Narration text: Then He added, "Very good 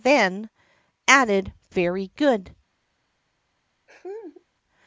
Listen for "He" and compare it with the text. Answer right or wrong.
wrong